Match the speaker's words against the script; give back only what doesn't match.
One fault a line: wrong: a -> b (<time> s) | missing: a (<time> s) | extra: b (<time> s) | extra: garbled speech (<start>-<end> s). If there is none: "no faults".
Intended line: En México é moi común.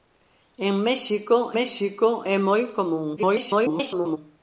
extra: México (1.6 s)
extra: garbled speech (3.2-4.2 s)